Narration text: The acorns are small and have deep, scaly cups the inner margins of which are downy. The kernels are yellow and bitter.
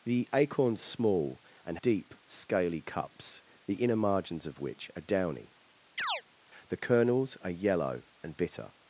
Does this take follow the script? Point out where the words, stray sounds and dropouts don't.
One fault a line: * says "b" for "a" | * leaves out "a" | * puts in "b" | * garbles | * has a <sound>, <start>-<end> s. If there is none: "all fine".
* leaves out "are"
* leaves out "have"
* has a chirp, 6.0-6.2 s